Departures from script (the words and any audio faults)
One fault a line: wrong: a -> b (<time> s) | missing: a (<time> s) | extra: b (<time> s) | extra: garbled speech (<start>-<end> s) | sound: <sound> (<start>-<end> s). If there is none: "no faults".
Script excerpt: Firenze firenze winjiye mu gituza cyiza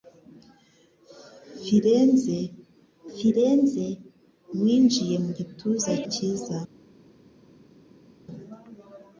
no faults